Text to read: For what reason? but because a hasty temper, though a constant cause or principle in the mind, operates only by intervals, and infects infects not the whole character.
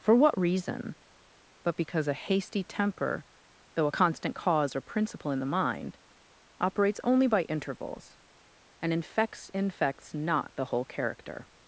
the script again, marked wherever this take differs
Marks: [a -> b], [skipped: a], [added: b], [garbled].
For what reason? but because a hasty temper, though a constant cause or principle in the mind, operates only by intervals, and infects infects not the whole character.